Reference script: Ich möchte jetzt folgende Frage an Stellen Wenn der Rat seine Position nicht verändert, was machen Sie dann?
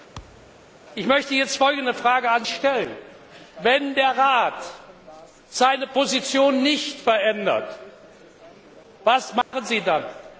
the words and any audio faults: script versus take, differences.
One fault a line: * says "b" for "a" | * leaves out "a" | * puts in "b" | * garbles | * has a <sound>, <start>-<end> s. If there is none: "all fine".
* has a thud, 0.1-0.7 s
* has a dropout, 9.4-9.5 s